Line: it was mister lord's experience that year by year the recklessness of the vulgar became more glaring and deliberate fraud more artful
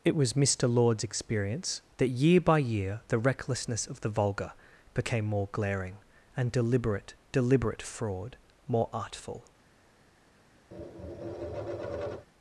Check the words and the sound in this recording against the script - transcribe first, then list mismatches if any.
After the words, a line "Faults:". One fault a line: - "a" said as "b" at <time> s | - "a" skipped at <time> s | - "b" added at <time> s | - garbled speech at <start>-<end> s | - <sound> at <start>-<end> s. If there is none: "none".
it was mister lord's experience that year by year the recklessness of the vulgar became more glaring and deliberate deliberate fraud more artful
Faults:
- "deliberate" added at 7.3 s
- tap at 10.7-12.3 s